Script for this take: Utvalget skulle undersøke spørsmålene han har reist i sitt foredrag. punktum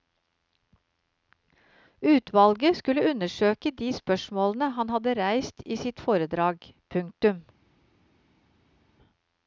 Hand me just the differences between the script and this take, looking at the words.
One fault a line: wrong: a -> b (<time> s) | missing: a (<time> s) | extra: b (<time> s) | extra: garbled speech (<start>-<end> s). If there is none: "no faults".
extra: de (3.7 s)
wrong: har -> hadde (4.9 s)